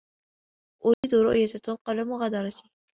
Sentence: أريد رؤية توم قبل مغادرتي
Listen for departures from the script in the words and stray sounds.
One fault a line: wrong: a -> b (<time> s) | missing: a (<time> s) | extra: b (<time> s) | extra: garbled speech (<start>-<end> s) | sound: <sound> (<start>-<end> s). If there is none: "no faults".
sound: dropout (0.9-1.0 s)